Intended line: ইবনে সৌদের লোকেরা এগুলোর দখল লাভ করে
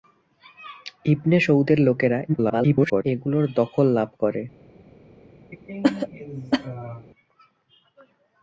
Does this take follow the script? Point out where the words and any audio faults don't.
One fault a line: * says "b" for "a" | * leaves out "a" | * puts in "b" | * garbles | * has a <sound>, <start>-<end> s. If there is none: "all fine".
* garbles
* has a cough, 5.5-7.1 s